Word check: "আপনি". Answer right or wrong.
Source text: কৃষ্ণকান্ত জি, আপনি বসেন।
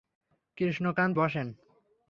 wrong